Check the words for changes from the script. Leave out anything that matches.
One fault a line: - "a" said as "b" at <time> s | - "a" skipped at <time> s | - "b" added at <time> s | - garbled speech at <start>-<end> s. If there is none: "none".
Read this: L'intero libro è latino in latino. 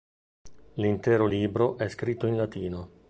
- "latino" said as "scritto" at 1.9 s